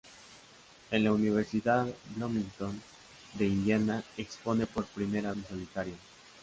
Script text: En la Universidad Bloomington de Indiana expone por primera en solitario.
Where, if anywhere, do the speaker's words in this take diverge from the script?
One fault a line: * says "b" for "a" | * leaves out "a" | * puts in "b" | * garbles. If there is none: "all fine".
all fine